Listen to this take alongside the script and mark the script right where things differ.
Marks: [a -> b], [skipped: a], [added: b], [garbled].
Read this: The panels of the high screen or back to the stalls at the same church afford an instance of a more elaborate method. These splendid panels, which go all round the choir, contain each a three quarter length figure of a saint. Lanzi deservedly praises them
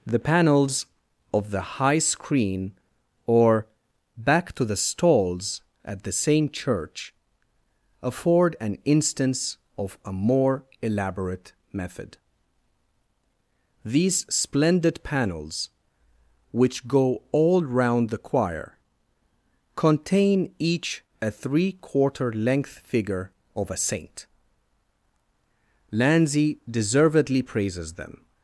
The panels of the high screen or back to the stalls at the same church afford an instance of a more elaborate method. These splendid panels, which go all round the choir, contain each a three quarter length figure of a saint. Lanzi deservedly praises them